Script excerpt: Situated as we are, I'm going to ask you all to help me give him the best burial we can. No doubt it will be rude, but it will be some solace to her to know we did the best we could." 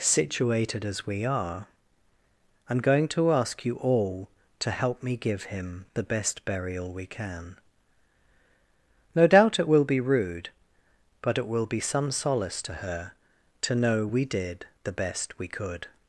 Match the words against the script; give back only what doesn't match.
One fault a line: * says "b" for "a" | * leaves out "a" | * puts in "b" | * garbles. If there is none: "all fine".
all fine